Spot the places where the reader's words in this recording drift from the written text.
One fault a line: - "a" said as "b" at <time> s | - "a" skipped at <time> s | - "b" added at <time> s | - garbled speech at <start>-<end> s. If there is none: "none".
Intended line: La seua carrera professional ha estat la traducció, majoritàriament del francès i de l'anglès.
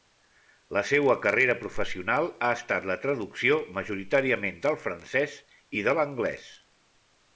none